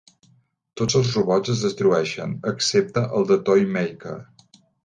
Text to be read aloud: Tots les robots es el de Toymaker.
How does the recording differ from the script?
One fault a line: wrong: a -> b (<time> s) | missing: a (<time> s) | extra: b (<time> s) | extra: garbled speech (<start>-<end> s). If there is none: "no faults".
wrong: les -> els (1.0 s)
extra: destrueixen excepte (1.7 s)